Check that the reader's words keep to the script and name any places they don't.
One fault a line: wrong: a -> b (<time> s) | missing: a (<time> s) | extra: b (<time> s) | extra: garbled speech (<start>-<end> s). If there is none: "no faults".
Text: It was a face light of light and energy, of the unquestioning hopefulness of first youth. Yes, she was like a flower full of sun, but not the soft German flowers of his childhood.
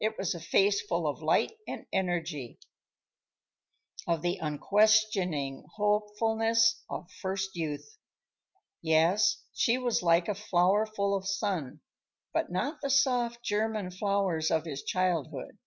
wrong: light -> full (0.8 s)